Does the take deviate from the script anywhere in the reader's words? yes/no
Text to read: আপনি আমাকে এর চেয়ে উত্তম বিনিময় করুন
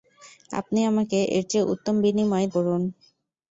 no